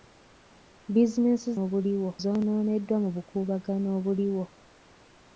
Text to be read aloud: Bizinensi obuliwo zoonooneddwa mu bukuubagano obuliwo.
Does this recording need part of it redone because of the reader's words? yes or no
no